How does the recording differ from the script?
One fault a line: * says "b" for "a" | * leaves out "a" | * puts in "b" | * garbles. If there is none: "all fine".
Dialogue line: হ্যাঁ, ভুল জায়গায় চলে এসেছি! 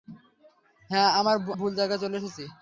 all fine